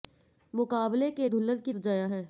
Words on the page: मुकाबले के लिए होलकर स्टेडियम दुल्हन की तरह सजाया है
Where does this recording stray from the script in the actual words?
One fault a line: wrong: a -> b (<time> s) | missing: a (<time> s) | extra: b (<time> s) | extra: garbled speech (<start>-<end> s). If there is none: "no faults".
missing: लिए होलकर स्टेडियम (1.3 s)
missing: तरह (1.7 s)